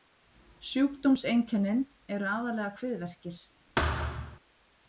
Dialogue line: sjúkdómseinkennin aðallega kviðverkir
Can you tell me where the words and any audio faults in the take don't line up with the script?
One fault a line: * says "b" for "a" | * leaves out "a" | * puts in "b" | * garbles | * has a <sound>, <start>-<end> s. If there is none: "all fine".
* puts in "eru"
* has a thud, 3.8-4.4 s